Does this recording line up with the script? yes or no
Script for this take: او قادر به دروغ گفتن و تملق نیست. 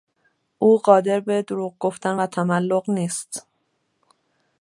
yes